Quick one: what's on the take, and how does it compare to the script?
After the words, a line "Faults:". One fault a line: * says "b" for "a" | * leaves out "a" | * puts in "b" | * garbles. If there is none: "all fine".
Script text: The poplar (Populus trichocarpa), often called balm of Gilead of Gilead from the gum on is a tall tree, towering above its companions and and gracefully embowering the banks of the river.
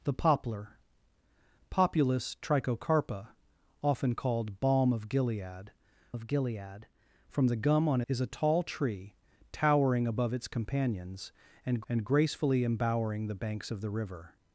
The poplar (Populus trichocarpa), often called balm of Gilead of Gilead from the gum on is a tall tree, towering above its companions and and gracefully embowering the banks of the river.
Faults:
all fine